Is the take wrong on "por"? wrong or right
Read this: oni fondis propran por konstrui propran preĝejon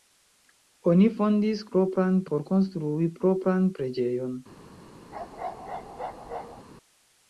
right